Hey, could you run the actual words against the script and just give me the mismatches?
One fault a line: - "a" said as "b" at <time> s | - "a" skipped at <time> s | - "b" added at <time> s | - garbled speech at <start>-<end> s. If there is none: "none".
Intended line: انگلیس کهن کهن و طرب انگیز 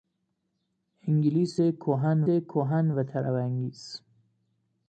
none